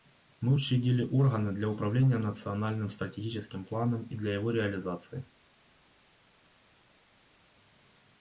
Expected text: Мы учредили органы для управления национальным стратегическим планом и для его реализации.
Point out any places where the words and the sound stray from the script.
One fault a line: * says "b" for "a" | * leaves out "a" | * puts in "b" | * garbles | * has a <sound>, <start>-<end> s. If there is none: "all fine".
all fine